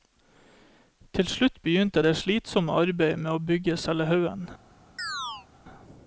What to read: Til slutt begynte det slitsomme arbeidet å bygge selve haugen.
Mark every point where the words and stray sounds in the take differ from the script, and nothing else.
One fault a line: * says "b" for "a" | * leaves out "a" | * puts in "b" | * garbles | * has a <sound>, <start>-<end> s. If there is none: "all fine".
* puts in "med"
* has a chirp, 5.0-5.5 s